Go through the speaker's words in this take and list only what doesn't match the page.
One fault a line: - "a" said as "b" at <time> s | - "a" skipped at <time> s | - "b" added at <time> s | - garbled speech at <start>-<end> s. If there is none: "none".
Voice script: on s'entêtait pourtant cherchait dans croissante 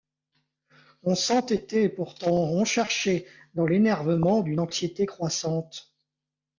- "on" added at 2.3 s
- "l'énervement d'une anxiété" added at 3.7 s